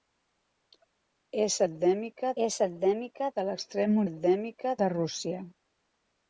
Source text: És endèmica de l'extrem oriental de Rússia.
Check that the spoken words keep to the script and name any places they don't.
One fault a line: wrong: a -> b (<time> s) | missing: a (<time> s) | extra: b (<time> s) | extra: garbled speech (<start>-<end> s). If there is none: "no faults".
extra: és endèmica (2.4 s)
wrong: oriental -> endèmica (4.1 s)